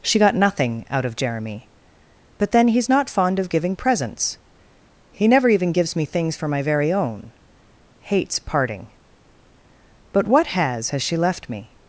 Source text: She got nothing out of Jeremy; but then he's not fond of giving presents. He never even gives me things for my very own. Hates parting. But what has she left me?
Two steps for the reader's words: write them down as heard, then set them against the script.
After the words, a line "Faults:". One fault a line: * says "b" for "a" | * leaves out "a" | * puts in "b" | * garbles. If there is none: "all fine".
She got nothing out of Jeremy; but then he's not fond of giving presents. He never even gives me things for my very own. Hates parting. But what has has she left me?
Faults:
* puts in "has"